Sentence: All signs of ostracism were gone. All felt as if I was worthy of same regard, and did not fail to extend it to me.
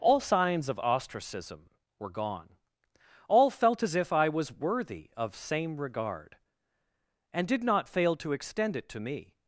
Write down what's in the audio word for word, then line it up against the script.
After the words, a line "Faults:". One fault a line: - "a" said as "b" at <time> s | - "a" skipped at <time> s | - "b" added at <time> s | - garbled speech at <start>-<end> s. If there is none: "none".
All signs of ostracism were gone. All felt as if I was worthy of same regard, and did not fail to extend it to me.
Faults:
none